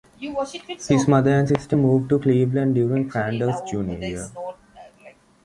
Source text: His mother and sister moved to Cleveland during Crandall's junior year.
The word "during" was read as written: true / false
true